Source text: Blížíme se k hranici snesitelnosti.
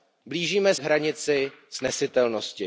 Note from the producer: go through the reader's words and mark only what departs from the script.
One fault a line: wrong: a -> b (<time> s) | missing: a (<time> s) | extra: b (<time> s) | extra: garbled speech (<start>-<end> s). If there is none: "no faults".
missing: se (0.8 s)